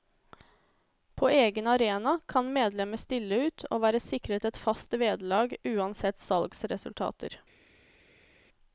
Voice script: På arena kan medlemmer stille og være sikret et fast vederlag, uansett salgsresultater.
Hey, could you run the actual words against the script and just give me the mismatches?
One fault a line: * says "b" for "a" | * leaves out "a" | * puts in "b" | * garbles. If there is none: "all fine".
* puts in "egen"
* puts in "ut"